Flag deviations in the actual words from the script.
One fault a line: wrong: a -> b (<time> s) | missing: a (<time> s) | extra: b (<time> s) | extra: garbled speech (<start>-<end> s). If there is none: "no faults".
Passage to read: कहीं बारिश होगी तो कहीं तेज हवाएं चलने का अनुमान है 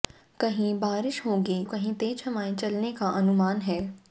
missing: तो (1.6 s)